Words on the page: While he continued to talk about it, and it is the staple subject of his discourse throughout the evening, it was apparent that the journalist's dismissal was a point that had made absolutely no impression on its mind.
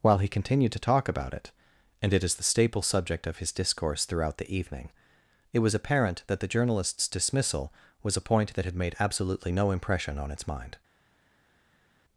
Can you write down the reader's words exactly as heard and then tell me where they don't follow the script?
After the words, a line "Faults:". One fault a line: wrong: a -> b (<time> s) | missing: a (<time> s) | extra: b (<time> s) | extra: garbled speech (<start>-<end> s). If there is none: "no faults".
While he continued to talk about it, and it is the staple subject of his discourse throughout the evening, it was apparent that the journalist's dismissal was a point that had made absolutely no impression on its mind.
Faults:
no faults